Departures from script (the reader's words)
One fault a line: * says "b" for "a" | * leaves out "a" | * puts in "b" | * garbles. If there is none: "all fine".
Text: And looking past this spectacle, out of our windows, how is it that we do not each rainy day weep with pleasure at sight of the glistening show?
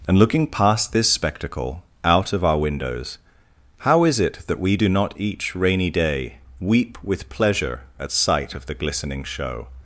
all fine